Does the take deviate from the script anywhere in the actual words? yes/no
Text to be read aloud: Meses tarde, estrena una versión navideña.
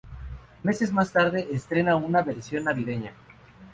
yes